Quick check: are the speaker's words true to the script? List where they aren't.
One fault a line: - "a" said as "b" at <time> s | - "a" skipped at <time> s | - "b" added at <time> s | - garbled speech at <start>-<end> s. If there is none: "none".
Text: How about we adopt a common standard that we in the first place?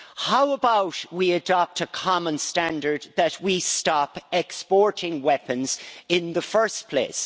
- "stop exporting weapons" added at 3.6 s